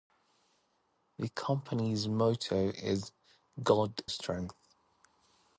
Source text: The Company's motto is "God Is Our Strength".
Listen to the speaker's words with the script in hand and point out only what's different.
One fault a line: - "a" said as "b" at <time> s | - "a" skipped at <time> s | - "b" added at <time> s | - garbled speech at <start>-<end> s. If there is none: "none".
- "Is Our" skipped at 4.0 s